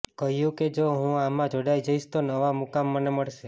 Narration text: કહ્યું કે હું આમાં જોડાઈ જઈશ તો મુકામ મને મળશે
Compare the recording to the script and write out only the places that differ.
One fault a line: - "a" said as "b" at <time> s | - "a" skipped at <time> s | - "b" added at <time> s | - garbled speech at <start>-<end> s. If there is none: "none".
- "જો" added at 0.7 s
- "નવા" added at 2.2 s